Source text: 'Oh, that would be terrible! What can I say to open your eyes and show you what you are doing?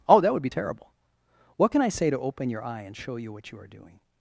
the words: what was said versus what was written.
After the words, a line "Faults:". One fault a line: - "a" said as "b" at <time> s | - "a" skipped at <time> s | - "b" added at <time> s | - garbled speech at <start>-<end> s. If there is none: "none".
'Oh, that would be terrible! What can I say to open your eye and show you what you are doing?
Faults:
- "eyes" said as "eye" at 2.6 s